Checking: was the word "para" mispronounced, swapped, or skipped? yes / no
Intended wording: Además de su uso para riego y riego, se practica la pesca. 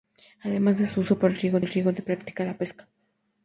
no